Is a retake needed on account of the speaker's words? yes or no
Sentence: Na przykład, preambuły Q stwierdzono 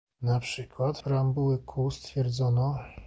no